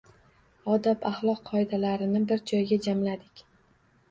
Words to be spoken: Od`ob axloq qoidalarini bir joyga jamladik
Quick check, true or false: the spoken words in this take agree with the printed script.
true